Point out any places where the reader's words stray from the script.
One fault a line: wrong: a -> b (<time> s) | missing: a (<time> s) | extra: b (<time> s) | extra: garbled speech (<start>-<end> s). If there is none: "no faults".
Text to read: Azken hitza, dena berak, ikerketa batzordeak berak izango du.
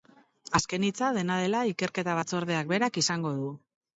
wrong: berak -> dela (1.4 s)